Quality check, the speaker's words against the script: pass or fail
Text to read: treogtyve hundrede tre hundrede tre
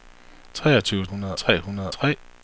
pass